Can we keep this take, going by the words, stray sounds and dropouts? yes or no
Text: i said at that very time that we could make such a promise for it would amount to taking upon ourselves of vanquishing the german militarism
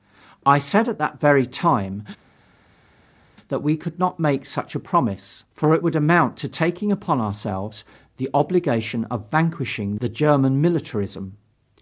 no